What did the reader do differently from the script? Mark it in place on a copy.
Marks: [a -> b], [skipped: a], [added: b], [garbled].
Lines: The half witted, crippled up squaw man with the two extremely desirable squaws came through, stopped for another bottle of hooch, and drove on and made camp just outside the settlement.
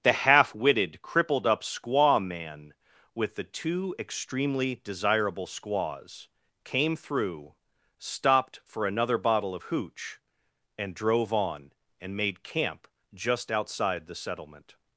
The half witted, crippled up squaw man with the two extremely desirable squaws came through, stopped for another bottle of hooch, and drove on and made camp just outside the settlement.